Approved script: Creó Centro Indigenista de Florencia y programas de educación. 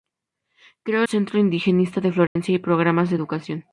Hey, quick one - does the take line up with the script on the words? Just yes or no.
yes